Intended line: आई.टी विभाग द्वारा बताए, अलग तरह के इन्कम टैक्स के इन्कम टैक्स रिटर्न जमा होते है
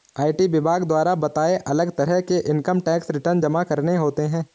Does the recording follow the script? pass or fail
fail